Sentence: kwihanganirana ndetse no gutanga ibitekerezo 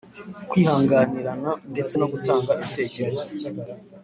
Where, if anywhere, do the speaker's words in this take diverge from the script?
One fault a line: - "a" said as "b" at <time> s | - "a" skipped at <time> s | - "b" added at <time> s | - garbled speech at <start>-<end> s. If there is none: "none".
none